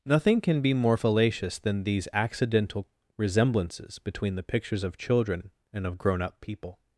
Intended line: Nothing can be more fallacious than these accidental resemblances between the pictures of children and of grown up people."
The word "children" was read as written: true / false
true